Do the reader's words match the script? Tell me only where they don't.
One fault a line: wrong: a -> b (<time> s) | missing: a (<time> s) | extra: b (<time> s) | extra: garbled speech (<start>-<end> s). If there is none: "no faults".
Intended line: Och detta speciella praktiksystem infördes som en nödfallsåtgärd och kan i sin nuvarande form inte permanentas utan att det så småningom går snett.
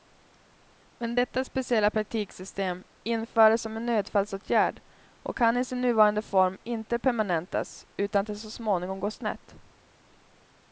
wrong: Och -> Men (1.0 s)